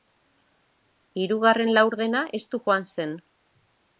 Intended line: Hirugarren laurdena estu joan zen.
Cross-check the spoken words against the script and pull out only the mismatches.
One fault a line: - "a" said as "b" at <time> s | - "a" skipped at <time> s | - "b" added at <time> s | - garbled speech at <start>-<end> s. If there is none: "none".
none